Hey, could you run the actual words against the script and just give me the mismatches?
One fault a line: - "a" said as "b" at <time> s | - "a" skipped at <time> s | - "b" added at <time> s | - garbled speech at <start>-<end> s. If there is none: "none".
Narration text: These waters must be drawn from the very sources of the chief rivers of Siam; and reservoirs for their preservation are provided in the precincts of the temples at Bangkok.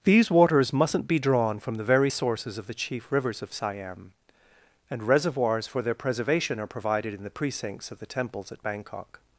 - "must" said as "mustn't" at 0.7 s